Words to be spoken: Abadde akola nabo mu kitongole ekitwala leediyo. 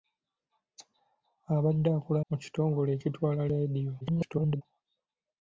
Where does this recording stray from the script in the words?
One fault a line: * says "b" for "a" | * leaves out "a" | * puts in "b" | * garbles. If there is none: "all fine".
* leaves out "nabo"
* garbles